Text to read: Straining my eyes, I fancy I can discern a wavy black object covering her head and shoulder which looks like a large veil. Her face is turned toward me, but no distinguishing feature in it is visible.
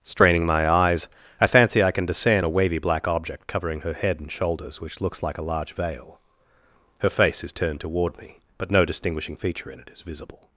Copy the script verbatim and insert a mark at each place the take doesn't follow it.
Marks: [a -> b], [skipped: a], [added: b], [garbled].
Straining my eyes, I fancy I can discern a wavy black object covering her head and [shoulder -> shoulders] which looks like a large veil. Her face is turned toward me, but no distinguishing feature in it is visible.